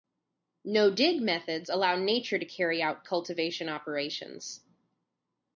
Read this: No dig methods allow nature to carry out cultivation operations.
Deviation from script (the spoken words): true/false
false